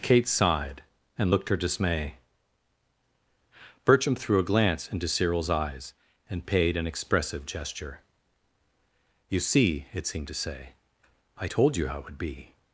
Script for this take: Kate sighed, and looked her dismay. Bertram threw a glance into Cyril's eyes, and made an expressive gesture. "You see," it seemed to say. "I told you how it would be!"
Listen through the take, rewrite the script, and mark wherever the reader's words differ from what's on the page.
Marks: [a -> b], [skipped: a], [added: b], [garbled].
Kate sighed, and looked her dismay. Bertram threw a glance into Cyril's eyes, and [made -> paid] an expressive gesture. "You see," it seemed to say. "I told you how it would be!"